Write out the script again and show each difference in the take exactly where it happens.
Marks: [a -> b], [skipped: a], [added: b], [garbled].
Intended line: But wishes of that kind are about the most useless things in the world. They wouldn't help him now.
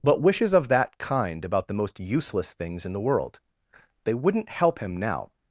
But wishes of that kind [skipped: are] about the most useless things in the world. They wouldn't help him now.